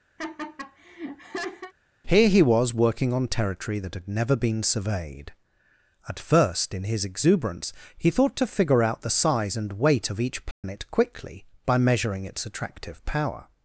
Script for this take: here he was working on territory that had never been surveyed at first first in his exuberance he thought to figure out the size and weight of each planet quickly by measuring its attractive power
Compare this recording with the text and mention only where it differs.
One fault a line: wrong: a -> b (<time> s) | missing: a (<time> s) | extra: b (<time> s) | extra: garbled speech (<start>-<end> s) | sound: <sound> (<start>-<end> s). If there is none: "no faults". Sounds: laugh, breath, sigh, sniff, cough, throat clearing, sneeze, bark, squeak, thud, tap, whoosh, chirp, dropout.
sound: laugh (0.2-1.7 s)
missing: first (6.7 s)
sound: dropout (10.5-10.6 s)